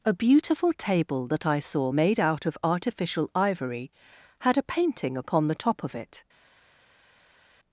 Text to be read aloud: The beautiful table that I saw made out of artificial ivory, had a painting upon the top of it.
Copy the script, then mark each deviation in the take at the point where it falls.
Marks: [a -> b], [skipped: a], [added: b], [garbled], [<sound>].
[The -> A] beautiful table that I saw made out of artificial ivory, had a painting upon the top of it.